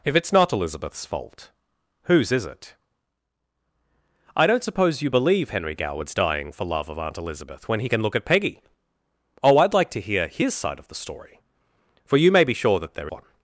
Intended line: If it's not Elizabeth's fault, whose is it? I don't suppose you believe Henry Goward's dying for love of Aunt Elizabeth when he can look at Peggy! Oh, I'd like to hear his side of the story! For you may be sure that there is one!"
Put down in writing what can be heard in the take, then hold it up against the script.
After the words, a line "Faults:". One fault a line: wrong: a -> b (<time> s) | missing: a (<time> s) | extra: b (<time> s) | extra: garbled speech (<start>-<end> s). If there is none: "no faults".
If it's not Elizabeth's fault, whose is it? I don't suppose you believe Henry Goward's dying for love of Aunt Elizabeth when he can look at Peggy! Oh, I'd like to hear his side of the story! For you may be sure that there one!"
Faults:
missing: is (13.1 s)